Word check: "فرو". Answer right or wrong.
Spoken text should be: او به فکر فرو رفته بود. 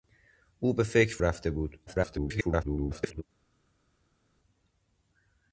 wrong